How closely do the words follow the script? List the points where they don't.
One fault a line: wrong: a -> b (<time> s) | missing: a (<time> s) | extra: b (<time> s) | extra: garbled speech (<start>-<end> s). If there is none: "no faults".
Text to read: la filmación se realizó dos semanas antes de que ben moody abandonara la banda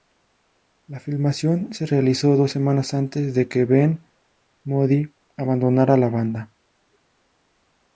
no faults